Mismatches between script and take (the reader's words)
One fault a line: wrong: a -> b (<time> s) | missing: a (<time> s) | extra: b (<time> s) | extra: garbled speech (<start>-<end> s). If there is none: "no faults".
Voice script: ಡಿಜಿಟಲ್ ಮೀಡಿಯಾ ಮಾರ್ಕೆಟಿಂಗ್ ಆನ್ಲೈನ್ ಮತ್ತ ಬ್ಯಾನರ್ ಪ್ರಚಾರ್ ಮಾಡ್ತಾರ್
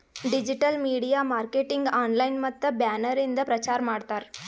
extra: ಇಂದ (3.2 s)